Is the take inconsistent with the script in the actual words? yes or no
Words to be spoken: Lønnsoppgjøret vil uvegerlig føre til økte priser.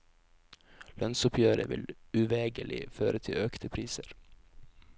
no